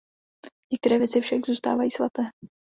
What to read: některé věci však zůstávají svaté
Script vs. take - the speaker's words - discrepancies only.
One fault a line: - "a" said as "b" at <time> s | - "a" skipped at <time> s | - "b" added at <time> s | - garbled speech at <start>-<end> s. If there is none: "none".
none